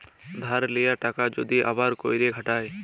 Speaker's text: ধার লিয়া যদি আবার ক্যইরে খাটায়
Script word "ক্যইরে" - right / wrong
right